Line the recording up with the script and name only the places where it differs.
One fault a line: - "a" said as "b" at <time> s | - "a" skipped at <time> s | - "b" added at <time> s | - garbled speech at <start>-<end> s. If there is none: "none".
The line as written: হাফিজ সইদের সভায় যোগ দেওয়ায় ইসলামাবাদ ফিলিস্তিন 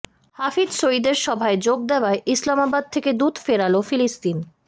- "থেকে দূত ফেরাল" added at 2.9 s